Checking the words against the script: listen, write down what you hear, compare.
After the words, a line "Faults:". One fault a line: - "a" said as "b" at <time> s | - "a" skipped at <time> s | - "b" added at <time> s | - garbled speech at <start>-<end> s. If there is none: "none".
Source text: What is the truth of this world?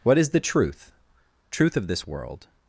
What is the truth truth of this world?
Faults:
- "truth" added at 1.5 s